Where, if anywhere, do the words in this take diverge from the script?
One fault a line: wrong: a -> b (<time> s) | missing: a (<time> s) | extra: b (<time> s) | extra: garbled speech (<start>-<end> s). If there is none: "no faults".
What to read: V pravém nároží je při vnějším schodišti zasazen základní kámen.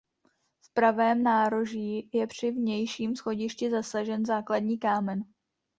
no faults